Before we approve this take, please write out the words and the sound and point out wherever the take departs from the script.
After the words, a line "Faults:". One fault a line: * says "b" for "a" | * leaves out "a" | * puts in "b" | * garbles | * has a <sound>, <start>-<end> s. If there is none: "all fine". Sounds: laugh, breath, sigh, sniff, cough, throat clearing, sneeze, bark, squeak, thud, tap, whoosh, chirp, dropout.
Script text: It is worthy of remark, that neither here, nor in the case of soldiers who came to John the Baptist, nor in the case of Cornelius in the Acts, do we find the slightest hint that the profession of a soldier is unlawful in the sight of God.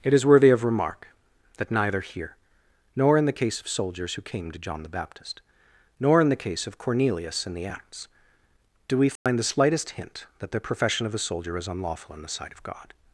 It is worthy of remark, that neither here, nor in the case of soldiers who came to John the Baptist, nor in the case of Cornelius in the Acts, do we find the slightest hint that the profession of a soldier is unlawful in the sight of God.
Faults:
* has a dropout, 9.2-9.3 s